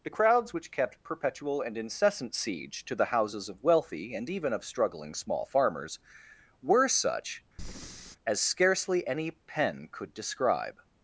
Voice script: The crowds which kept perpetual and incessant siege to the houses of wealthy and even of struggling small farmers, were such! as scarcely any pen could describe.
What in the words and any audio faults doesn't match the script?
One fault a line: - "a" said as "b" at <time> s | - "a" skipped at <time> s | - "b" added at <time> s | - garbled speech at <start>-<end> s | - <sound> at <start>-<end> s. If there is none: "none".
- breath at 7.6-8.2 s